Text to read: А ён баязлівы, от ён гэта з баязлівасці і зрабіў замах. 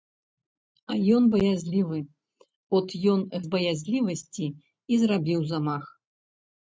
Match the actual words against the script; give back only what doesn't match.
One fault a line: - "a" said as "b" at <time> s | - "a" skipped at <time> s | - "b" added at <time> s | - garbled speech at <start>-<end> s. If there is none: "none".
- "гэта" skipped at 3.2 s